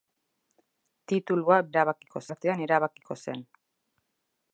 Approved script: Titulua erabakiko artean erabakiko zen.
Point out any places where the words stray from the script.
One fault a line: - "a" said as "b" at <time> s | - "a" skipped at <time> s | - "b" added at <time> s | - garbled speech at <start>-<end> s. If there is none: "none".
none